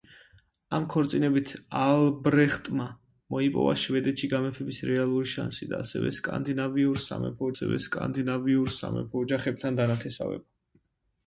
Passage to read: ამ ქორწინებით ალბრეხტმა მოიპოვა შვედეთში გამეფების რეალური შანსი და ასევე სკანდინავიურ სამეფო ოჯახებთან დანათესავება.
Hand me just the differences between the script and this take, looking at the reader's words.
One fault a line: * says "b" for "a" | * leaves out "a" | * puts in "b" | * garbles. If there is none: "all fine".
* puts in "ასევე სკანდინავიურ სამეფო"